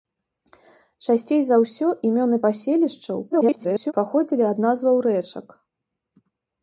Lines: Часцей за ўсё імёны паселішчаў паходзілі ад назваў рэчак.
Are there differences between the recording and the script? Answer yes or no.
yes